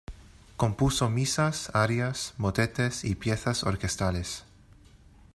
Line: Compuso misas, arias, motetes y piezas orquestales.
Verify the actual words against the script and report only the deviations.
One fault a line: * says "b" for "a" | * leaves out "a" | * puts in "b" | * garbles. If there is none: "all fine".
all fine